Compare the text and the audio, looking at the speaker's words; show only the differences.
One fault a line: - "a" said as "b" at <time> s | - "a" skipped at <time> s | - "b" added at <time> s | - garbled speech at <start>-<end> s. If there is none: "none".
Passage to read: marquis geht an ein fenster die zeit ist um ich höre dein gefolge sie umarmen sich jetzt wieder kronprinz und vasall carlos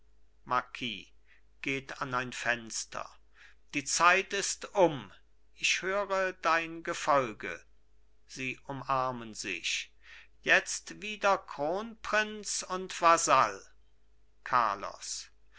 none